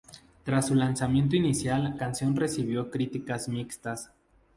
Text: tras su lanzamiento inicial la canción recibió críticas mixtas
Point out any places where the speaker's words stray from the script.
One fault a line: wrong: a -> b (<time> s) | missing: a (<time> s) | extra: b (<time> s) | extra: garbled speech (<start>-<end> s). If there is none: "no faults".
missing: la (2.0 s)